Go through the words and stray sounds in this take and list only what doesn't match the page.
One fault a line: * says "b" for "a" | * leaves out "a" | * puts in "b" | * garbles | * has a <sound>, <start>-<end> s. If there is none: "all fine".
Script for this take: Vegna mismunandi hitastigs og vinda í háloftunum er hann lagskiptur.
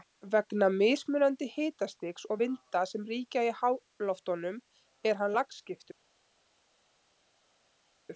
* puts in "sem ríkja"